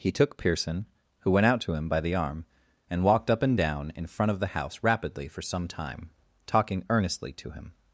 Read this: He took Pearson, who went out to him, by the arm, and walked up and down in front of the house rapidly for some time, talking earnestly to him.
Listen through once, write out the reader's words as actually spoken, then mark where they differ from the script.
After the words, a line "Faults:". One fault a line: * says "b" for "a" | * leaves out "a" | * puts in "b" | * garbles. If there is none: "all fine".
He took Pearson, who went out to him, by the arm, and walked up and down in front of the house rapidly for some time, talking earnestly to him.
Faults:
all fine